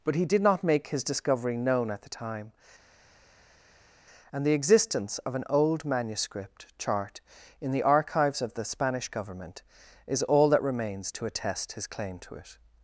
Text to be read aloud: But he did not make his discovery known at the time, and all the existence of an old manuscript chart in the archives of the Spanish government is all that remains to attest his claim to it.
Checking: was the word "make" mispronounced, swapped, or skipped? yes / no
no